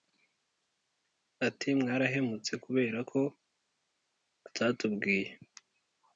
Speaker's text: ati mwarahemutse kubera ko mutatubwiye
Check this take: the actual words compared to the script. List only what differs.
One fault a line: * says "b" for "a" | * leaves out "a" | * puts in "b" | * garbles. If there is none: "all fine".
all fine